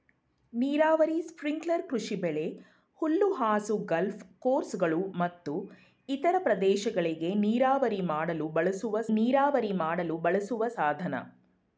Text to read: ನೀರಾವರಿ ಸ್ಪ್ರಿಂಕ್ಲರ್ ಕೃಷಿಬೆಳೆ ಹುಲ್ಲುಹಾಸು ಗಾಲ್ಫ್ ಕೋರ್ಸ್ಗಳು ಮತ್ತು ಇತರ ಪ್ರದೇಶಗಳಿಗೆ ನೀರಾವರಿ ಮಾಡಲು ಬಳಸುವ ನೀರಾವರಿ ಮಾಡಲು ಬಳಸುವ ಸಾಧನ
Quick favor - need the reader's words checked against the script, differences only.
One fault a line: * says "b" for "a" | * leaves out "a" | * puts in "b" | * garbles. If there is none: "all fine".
all fine